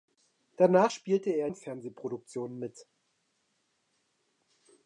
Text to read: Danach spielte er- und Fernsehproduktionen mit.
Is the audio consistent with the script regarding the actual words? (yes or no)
yes